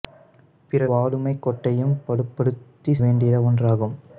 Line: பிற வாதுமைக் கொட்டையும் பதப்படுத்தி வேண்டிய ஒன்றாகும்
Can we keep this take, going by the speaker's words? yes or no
yes